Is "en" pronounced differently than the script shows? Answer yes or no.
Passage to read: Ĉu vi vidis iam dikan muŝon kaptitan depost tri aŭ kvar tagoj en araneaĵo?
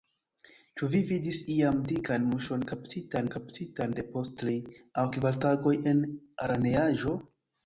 no